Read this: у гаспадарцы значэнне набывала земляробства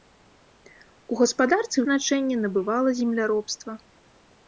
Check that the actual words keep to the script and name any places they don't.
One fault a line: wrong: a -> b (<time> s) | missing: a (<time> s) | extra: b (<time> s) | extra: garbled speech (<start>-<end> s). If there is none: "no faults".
no faults